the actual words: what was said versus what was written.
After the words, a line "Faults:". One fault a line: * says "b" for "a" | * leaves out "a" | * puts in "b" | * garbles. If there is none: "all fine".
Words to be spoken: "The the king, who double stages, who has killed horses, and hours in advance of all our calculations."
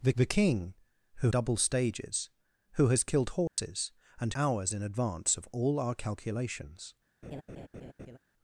"The the king, who double stages, who has killed horses, and hours in advance of all our calculations."
Faults:
all fine